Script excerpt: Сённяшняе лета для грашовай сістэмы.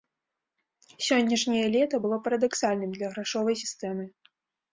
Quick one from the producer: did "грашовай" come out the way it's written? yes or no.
yes